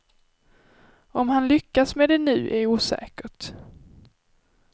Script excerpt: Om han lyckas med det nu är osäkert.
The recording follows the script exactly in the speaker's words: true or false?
true